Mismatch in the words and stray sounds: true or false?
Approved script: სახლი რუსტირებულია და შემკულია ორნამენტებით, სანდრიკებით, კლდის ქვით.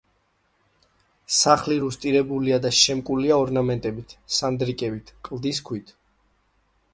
false